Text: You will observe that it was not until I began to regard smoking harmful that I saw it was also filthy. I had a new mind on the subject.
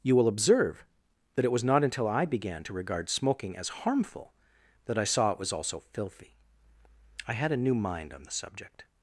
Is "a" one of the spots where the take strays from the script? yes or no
no